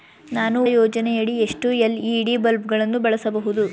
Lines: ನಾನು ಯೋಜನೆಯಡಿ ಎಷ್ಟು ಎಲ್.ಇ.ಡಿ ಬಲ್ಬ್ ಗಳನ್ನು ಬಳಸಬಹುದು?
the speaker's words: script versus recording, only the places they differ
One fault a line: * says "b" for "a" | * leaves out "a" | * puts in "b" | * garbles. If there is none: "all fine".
all fine